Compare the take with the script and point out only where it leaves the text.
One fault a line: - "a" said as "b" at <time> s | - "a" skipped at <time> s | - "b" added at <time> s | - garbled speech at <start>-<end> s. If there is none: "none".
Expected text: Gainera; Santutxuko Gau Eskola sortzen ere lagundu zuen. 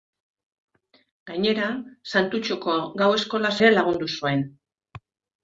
- "sortzen" skipped at 3.5 s